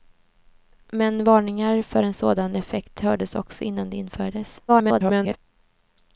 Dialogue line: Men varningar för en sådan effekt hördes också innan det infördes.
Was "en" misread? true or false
false